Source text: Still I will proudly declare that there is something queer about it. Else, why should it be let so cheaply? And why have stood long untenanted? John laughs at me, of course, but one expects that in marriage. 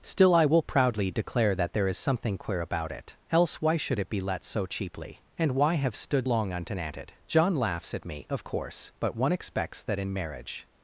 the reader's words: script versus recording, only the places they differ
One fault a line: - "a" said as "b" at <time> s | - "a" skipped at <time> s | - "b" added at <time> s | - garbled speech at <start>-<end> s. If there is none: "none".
none